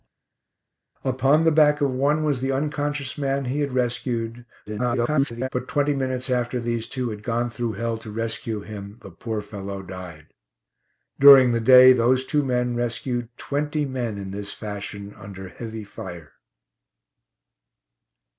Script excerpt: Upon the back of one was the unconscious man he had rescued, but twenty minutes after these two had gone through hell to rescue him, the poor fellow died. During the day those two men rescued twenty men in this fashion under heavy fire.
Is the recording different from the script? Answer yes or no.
yes